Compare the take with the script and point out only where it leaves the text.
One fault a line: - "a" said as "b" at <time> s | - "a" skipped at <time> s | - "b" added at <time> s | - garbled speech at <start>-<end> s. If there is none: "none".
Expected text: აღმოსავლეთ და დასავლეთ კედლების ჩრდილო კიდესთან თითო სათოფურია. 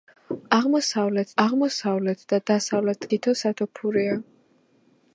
- "აღმოსავლეთ" added at 1.4 s
- "კედლების ჩრდილო კიდესთან" skipped at 3.1 s